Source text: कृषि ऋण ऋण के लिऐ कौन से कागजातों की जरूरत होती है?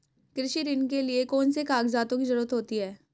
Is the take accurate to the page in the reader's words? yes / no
no